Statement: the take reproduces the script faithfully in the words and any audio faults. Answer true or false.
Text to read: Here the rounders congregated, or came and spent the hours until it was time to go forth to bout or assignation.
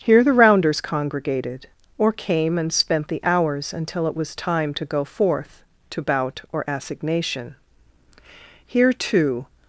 false